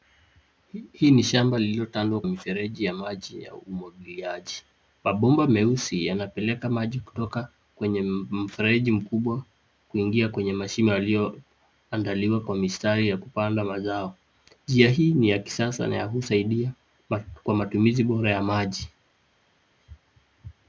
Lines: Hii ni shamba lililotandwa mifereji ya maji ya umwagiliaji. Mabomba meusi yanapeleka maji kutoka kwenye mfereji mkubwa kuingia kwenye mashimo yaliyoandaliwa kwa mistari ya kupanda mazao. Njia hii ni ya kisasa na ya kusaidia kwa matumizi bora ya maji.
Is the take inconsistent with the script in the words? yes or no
no